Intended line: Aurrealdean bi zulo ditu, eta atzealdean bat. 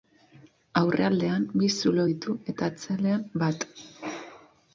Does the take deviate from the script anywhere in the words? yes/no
no